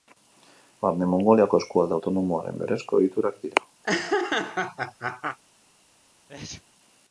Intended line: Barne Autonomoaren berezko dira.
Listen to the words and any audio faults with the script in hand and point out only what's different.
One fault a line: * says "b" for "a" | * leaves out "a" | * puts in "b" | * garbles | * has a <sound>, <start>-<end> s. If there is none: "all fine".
* puts in "Mongoliako eskualde"
* puts in "egiturak"
* has a laugh, 3.8-5.4 s
* has a sneeze, 6.3-6.6 s